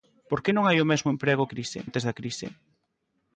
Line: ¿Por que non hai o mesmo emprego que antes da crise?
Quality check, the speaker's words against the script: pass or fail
fail